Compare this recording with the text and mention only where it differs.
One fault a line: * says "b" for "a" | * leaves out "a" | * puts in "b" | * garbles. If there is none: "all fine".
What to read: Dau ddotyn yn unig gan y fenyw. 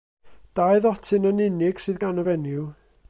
* puts in "sydd"